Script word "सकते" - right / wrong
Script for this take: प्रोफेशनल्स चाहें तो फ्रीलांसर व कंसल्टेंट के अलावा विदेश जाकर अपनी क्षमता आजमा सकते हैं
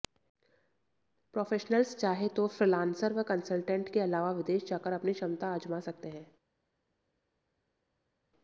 right